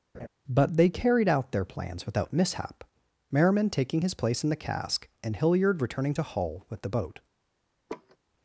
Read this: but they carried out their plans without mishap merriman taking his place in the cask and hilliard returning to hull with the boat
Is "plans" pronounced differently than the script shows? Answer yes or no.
no